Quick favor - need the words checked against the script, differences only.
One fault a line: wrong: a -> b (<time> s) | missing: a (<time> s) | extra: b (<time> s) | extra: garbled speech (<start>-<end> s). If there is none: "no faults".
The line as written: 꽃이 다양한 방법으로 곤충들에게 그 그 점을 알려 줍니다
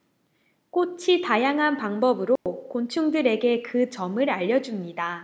missing: 그 (3.9 s)